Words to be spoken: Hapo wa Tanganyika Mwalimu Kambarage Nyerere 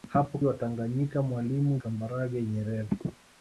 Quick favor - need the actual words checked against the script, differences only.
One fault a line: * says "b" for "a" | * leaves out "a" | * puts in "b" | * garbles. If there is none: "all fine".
all fine